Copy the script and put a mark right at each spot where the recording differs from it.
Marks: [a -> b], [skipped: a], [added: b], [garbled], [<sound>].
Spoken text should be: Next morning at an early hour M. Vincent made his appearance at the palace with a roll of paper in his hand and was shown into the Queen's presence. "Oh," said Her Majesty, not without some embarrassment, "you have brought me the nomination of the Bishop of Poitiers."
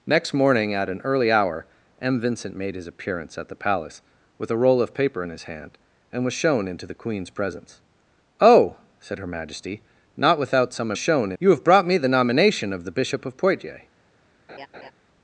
Next morning at an early hour M. Vincent made his appearance at the palace with a roll of paper in his hand and was shown into the Queen's presence. "Oh," said Her Majesty, not without some [embarrassment, -> shown] "you have brought me the nomination of the Bishop of Poitiers." [laugh]